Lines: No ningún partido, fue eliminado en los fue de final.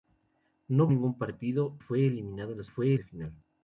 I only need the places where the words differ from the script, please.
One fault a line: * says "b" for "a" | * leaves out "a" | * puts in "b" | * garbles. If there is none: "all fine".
all fine